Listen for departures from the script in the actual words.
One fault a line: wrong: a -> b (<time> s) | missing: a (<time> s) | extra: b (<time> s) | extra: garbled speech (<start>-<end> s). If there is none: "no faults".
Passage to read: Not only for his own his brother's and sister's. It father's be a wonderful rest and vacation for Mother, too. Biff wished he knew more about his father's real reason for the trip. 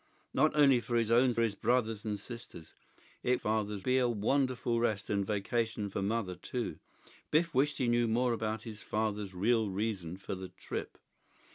no faults